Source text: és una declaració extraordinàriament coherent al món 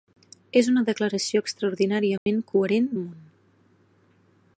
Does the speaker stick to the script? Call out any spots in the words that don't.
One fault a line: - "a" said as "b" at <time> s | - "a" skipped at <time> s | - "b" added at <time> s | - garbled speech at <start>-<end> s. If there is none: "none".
none